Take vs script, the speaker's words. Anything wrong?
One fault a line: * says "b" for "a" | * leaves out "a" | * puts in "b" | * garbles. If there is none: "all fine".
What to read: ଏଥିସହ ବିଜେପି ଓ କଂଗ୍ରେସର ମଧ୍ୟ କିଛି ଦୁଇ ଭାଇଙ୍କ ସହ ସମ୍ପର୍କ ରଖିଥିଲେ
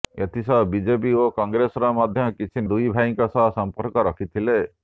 all fine